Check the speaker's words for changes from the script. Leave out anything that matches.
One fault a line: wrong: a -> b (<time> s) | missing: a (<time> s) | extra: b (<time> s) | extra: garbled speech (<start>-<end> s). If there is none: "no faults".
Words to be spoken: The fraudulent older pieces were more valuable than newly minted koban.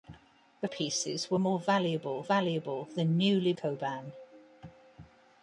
missing: fraudulent older (0.7 s)
extra: valuable (2.2 s)
missing: minted (3.5 s)